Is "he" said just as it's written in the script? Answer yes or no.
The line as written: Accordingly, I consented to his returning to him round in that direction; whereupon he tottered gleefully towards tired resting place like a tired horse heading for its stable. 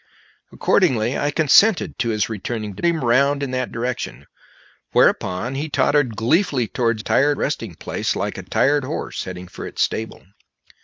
yes